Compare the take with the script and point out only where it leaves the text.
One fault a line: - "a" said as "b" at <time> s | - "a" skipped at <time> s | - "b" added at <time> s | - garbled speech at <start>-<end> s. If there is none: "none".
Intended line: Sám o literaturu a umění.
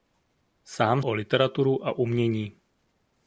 none